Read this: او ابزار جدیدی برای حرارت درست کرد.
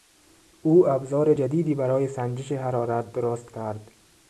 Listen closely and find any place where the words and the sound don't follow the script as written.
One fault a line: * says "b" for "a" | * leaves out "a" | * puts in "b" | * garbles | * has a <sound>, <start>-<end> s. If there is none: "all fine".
* puts in "سنجش"